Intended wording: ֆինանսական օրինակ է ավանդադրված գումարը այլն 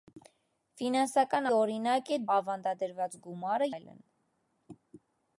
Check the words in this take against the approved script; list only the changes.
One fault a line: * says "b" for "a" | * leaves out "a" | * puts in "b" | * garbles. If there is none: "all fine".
all fine